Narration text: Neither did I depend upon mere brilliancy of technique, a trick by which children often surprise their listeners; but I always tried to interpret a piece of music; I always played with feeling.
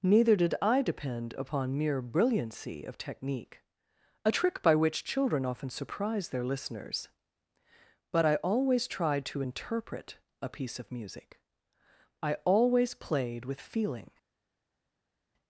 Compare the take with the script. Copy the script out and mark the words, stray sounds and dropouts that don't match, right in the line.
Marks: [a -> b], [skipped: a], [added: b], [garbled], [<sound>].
Neither did I depend upon mere brilliancy of technique, a trick by which children often surprise their listeners; but I always tried to interpret a piece of music; I always played with feeling.